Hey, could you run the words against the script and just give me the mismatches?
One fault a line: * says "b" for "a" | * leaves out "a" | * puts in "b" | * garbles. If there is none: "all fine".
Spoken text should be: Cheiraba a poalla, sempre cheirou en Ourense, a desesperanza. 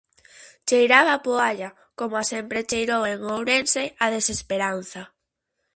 * puts in "coma"